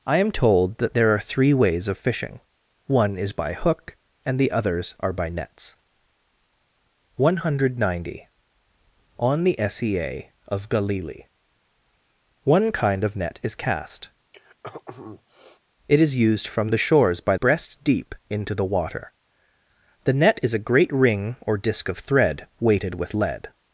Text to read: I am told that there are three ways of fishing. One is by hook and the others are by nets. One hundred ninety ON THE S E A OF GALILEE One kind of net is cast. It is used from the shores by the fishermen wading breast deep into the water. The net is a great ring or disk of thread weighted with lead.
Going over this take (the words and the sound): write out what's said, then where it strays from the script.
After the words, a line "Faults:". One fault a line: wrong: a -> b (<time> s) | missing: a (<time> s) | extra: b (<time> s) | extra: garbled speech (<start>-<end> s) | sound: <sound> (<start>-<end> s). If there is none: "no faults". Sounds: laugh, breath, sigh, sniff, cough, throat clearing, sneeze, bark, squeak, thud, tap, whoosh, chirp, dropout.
I am told that there are three ways of fishing. One is by hook and the others are by nets. One hundred ninety ON THE S E A OF GALILEE One kind of net is cast. It is used from the shores by breast deep into the water. The net is a great ring or disk of thread weighted with lead.
Faults:
sound: throat clearing (14.3-15.6 s)
missing: the fishermen wading (17.3 s)